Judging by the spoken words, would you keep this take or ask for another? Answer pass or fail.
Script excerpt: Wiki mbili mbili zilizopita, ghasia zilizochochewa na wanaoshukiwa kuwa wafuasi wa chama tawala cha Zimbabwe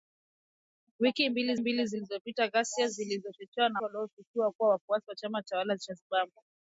pass